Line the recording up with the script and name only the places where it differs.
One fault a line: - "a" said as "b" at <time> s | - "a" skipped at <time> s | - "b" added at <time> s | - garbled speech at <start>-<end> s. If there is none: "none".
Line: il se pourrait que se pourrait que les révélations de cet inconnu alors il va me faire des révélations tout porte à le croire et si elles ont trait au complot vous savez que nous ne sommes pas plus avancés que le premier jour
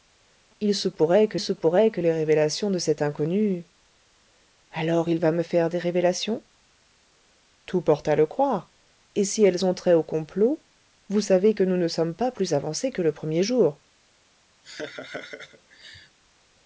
none